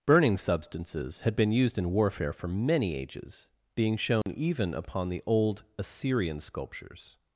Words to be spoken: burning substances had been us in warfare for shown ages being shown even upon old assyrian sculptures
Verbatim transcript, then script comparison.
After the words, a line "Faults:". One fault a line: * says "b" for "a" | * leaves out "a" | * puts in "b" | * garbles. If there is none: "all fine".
burning substances had been used in warfare for many ages being shown even upon the old assyrian sculptures
Faults:
* says "used" for "us"
* says "many" for "shown"
* puts in "the"